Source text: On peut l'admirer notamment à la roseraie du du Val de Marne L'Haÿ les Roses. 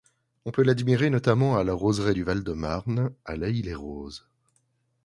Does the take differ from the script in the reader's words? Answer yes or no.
yes